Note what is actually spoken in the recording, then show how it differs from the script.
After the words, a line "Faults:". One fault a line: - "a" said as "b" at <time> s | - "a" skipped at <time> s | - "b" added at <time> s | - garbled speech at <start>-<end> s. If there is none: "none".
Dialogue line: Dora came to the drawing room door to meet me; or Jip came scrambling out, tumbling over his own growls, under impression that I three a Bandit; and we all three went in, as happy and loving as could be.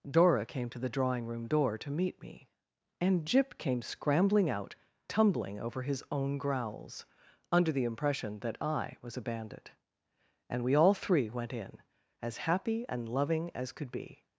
Dora came to the drawing room door to meet me; and Jip came scrambling out, tumbling over his own growls, under the impression that I was a Bandit; and we all three went in, as happy and loving as could be.
Faults:
- "or" said as "and" at 3.0 s
- "the" added at 7.7 s
- "three" said as "was" at 9.0 s